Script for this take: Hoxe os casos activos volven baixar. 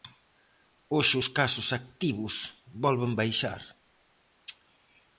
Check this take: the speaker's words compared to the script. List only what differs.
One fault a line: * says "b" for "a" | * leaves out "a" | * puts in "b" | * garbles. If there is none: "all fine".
all fine